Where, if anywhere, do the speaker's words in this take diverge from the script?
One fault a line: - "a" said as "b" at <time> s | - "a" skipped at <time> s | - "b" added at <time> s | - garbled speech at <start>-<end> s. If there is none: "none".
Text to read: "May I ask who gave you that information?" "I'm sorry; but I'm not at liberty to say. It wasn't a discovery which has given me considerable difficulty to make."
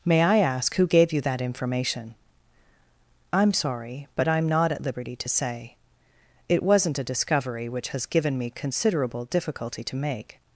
none